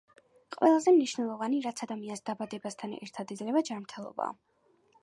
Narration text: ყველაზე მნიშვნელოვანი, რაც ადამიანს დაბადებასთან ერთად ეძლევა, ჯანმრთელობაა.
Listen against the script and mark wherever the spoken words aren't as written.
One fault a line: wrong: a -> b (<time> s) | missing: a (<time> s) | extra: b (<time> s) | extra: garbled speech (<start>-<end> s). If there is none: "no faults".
no faults